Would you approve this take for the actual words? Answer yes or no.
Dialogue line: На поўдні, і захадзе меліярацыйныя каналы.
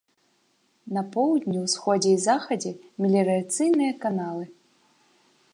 no